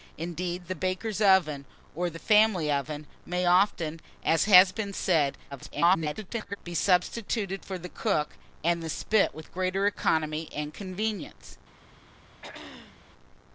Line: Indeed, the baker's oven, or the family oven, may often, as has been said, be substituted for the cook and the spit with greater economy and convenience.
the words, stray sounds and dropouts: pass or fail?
fail